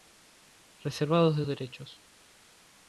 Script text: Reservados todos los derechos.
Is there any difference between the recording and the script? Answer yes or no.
yes